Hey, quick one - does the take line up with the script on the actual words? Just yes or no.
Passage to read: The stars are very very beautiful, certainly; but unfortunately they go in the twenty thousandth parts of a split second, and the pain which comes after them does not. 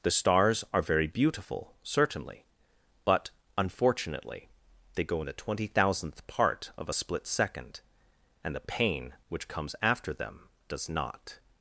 no